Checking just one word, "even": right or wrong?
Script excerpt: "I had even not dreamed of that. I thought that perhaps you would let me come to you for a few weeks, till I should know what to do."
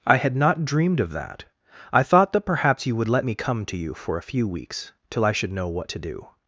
wrong